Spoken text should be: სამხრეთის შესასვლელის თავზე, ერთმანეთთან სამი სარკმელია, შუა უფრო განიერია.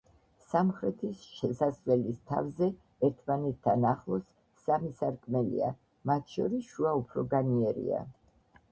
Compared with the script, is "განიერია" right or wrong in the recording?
right